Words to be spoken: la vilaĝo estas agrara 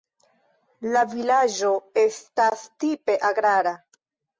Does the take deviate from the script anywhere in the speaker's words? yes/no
yes